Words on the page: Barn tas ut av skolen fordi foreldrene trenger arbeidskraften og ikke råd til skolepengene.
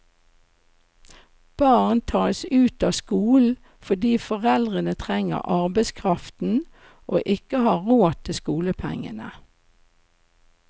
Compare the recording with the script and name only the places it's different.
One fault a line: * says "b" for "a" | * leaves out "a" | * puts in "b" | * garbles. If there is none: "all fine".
* puts in "har"